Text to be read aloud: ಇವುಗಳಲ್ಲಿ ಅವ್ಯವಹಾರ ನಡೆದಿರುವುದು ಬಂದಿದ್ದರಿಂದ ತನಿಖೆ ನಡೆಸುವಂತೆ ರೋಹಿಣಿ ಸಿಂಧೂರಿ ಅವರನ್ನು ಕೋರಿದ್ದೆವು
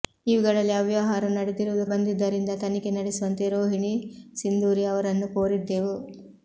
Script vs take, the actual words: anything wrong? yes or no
no